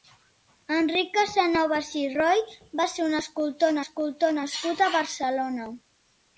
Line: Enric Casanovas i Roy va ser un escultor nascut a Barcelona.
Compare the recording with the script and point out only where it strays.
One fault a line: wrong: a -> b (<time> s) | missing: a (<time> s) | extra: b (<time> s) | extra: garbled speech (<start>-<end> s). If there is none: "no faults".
extra: escultor (3.8 s)